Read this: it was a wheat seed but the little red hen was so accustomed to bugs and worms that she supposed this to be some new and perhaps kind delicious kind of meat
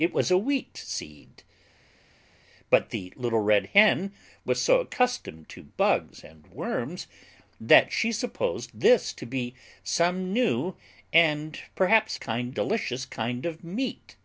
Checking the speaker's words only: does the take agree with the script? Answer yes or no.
yes